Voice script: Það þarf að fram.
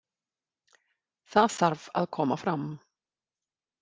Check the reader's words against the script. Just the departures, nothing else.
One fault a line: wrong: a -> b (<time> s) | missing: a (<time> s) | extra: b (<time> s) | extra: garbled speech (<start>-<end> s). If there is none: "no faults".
extra: koma (2.2 s)